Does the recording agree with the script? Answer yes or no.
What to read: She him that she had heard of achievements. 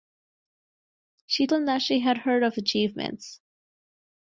yes